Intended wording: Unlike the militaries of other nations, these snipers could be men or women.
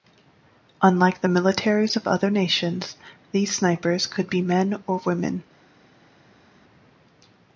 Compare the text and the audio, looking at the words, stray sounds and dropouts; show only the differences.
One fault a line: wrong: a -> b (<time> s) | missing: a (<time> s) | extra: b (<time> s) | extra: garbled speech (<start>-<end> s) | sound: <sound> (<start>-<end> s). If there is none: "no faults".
no faults